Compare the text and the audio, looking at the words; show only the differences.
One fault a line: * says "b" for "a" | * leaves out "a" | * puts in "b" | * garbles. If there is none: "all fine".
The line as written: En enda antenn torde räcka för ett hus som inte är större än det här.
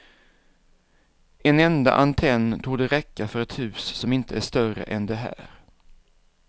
all fine